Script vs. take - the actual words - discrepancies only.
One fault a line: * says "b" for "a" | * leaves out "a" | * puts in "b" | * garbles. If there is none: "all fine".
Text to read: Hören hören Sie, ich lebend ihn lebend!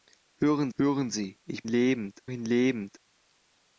all fine